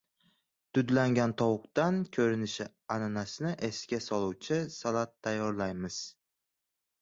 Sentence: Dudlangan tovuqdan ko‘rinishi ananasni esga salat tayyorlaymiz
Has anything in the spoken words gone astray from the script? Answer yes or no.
yes